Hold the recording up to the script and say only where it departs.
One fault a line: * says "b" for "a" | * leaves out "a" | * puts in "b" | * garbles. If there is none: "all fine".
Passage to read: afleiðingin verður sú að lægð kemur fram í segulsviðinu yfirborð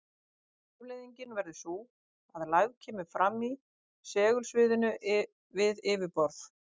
* puts in "við"